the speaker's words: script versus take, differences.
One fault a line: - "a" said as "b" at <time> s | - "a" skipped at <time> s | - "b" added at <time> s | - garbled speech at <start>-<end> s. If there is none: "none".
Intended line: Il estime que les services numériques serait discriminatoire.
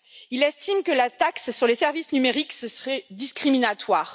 - "la taxe sur" added at 0.9 s